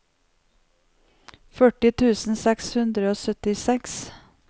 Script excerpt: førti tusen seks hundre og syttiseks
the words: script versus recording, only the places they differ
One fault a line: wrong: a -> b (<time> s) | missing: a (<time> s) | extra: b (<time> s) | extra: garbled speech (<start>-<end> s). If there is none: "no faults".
no faults